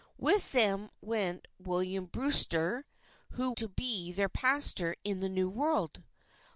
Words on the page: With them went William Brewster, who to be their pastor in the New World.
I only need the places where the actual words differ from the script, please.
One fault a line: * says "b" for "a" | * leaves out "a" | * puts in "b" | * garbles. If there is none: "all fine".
all fine